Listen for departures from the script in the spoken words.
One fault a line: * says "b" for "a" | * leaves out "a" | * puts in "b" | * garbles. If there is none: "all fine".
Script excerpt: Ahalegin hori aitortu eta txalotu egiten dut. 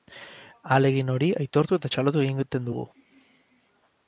* says "dugu" for "dut"